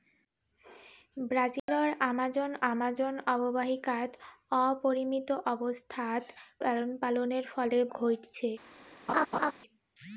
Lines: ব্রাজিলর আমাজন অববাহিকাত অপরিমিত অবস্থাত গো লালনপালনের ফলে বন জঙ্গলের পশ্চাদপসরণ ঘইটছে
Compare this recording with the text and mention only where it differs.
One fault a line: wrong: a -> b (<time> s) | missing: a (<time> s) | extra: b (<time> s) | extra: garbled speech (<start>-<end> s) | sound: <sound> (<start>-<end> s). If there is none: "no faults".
sound: dropout (1.6-1.7 s)
extra: আমাজন (2.7 s)
missing: গো (6.2 s)
missing: বন জঙ্গলের পশ্চাদপসরণ (7.8 s)
sound: laugh (9.1-9.5 s)